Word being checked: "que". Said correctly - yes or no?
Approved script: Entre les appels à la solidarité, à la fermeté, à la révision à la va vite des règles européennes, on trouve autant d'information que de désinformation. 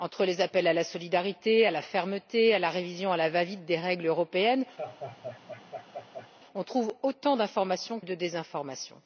no